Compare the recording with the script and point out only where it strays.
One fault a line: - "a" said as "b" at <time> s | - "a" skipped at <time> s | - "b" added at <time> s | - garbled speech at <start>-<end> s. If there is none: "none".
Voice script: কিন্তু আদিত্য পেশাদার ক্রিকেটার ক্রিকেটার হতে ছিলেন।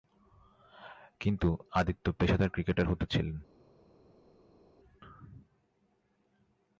- "ক্রিকেটার" skipped at 2.9 s